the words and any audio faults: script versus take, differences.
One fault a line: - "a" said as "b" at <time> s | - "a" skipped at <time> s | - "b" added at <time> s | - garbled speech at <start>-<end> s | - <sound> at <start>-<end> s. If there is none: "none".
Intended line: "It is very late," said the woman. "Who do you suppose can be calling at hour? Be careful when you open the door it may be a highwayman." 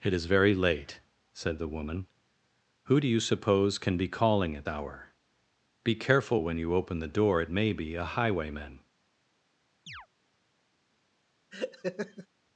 - chirp at 9.9-10.1 s
- laugh at 11.5-12.3 s